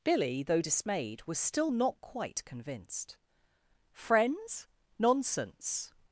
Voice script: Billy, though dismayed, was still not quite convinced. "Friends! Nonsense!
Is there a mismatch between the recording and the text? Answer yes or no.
no